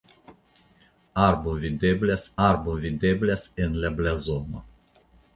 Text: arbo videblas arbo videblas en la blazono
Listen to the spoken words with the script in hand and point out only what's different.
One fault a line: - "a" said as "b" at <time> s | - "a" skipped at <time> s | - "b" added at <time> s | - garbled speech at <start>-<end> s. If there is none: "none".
none